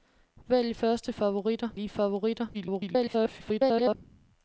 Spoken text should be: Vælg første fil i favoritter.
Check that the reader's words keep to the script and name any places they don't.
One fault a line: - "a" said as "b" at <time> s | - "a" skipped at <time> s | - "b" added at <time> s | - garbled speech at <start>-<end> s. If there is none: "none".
- "fil" said as "favoritter" at 1.1 s
- garbled speech at 2.5-4.0 s